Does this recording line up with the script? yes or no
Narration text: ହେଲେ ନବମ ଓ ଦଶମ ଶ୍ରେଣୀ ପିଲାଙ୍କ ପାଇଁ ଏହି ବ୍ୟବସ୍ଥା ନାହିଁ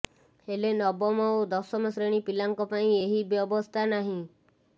yes